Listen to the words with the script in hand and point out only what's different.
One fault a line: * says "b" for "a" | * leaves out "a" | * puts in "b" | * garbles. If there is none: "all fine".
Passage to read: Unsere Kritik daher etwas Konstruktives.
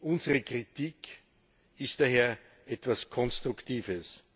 * puts in "ist"